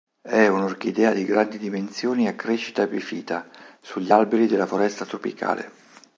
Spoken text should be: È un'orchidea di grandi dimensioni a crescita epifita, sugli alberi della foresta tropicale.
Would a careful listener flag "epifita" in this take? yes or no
no